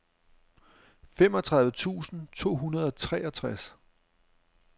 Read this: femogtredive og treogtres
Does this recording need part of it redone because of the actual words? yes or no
yes